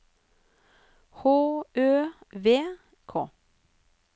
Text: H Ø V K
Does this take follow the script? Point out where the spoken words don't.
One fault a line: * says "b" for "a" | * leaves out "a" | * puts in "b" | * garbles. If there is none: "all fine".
all fine